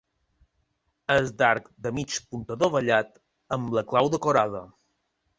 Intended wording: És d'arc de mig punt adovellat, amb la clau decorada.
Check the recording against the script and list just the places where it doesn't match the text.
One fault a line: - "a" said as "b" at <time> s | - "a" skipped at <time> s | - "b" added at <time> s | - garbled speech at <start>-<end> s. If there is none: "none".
none